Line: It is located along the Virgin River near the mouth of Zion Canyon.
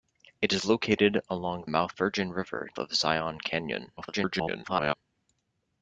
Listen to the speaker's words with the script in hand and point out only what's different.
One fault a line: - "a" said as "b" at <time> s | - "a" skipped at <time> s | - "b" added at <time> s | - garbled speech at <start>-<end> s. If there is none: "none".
- "the" said as "mouth" at 1.7 s
- "near the mouth" skipped at 2.7 s
- garbled speech at 4.0-4.9 s